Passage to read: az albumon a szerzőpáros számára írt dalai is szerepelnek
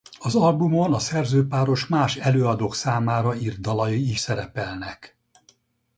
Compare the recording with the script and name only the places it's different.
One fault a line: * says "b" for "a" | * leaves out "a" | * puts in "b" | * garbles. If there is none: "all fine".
* puts in "más előadók"